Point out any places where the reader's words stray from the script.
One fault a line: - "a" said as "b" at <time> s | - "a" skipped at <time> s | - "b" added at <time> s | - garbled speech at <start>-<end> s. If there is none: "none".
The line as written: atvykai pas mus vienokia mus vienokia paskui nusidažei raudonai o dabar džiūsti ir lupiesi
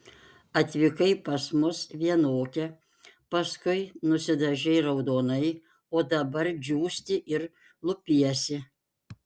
- "mus vienokia" skipped at 2.7 s